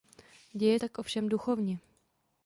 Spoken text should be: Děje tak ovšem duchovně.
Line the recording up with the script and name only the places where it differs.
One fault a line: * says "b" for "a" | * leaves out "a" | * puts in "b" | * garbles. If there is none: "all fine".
all fine